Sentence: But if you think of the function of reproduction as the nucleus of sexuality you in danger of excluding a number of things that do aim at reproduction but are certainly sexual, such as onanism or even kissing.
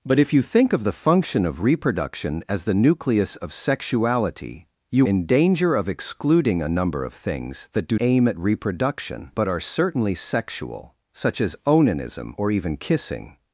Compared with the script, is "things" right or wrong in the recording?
right